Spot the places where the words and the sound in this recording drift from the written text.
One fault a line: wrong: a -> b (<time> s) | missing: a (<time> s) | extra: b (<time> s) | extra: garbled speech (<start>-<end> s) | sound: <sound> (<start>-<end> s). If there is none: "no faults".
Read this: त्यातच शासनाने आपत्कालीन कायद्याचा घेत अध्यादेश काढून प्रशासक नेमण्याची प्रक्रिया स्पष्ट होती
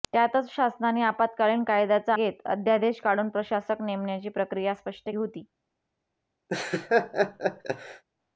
sound: laugh (6.5-8.0 s)